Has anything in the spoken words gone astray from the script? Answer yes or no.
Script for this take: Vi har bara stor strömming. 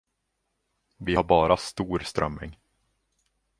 no